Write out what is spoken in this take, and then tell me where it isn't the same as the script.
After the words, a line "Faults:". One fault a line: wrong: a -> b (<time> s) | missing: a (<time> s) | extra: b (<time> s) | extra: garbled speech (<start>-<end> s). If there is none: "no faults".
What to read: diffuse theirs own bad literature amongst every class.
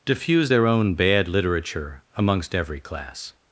diffuse their own bad literature amongst every class.
Faults:
wrong: theirs -> their (0.5 s)